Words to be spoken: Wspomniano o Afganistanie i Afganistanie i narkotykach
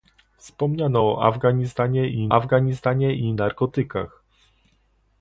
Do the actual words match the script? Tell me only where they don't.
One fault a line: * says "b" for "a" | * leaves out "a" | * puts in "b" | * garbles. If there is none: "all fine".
all fine